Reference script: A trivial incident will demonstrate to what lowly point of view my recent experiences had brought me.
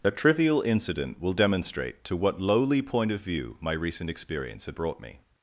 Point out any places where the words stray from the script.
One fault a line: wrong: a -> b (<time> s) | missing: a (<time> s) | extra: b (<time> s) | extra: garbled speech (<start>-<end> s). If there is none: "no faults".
wrong: experiences -> experience (4.1 s)